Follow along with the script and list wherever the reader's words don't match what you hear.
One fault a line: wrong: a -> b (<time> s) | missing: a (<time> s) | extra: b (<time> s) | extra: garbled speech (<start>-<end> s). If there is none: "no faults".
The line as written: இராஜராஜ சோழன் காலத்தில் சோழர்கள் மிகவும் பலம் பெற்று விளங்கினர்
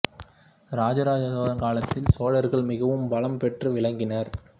no faults